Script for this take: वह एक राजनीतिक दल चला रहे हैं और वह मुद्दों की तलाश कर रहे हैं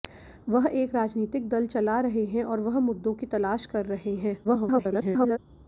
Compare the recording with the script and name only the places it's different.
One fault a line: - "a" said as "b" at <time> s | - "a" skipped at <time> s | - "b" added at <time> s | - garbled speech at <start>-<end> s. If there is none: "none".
- garbled speech at 4.4-5.4 s